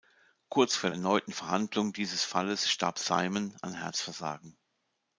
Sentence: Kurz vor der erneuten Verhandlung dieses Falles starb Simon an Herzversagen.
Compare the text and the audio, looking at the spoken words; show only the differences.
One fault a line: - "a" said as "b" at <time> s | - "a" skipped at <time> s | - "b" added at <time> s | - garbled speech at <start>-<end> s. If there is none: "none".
- "der" skipped at 0.9 s